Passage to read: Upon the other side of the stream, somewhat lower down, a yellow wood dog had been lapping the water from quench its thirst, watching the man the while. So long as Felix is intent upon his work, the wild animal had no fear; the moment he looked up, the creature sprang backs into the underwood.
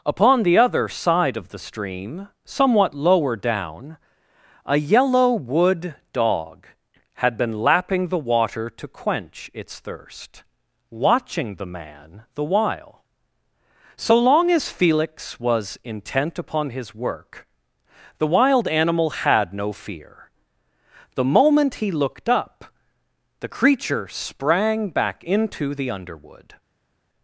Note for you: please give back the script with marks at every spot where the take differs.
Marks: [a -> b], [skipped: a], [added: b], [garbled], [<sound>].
Upon the other side of the stream, somewhat lower down, a yellow wood dog had been lapping the water [from -> to] quench its thirst, watching the man the while. So long as Felix [is -> was] intent upon his work, the wild animal had no fear; the moment he looked up, the creature sprang [backs -> back] into the underwood.